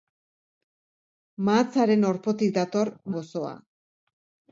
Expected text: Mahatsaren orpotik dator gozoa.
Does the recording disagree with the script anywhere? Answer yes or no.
no